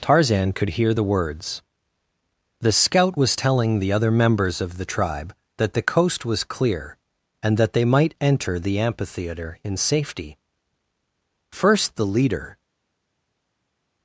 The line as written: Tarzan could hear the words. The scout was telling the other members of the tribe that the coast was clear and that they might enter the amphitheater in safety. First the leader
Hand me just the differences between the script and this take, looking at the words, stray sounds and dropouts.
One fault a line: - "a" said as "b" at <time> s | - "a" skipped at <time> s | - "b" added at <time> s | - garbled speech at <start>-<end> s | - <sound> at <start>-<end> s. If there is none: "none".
none